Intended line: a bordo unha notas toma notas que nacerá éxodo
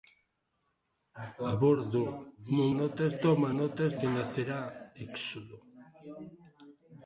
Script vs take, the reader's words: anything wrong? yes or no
no